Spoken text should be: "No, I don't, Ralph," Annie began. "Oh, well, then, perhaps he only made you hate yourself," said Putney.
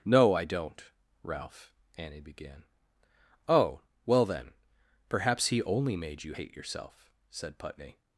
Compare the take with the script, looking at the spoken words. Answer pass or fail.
pass